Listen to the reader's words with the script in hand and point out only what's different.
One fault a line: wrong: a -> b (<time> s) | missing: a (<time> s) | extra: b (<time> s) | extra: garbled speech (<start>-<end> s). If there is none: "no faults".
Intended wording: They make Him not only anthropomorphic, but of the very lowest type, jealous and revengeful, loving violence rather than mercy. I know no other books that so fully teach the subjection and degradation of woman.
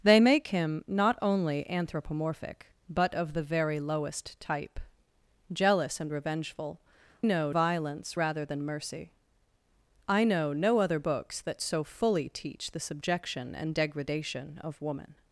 wrong: loving -> know (7.2 s)